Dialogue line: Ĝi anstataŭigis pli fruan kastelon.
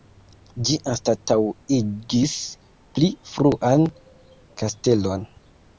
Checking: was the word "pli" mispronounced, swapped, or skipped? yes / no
no